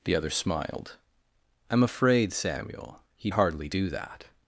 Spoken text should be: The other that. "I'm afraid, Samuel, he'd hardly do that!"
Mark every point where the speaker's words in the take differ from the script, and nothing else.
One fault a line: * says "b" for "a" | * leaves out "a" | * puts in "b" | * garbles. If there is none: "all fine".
* says "smiled" for "that"